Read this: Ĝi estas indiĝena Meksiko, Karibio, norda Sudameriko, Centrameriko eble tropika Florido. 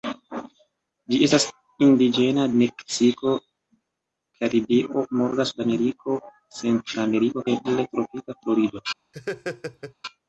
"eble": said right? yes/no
yes